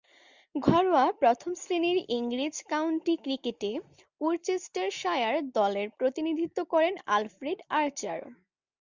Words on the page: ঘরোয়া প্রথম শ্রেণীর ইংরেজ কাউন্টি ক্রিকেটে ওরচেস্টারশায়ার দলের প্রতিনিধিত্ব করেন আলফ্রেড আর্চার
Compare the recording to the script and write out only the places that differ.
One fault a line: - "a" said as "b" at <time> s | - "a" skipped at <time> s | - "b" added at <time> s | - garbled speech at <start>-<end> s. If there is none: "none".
none